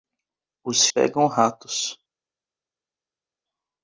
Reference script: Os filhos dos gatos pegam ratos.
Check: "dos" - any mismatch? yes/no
yes